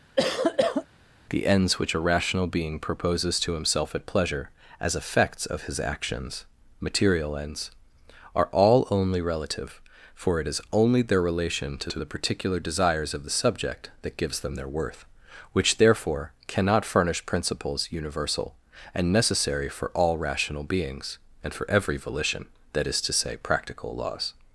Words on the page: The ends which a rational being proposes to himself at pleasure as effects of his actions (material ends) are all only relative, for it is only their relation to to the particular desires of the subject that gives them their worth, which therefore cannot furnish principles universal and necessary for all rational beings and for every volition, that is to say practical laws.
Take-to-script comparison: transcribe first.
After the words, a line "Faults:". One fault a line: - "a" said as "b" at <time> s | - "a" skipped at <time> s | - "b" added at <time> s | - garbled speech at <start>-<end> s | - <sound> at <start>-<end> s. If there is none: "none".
The ends which a rational being proposes to himself at pleasure as effects of his actions (material ends) are all only relative, for it is only their relation to to the particular desires of the subject that gives them their worth, which therefore cannot furnish principles universal and necessary for all rational beings and for every volition, that is to say practical laws.
Faults:
- cough at 0.2-0.9 s